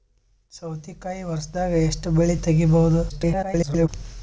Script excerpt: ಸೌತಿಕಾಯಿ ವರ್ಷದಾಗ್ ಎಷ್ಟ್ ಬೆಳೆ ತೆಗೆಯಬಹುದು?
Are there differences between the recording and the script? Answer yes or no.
yes